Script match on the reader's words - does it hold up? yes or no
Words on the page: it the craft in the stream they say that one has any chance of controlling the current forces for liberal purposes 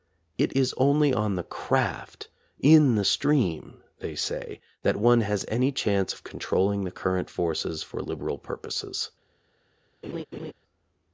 no